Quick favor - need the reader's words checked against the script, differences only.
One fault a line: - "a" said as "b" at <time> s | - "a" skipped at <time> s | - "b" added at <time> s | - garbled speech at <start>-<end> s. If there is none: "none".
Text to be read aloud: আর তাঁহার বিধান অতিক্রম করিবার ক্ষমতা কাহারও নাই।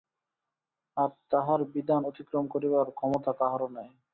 none